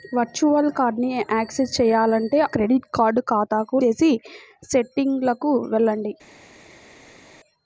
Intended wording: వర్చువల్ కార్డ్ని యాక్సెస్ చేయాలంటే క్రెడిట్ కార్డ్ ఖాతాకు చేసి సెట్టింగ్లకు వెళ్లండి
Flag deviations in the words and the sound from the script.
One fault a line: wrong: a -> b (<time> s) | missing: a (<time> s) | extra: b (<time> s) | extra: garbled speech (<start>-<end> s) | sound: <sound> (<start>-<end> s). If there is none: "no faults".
no faults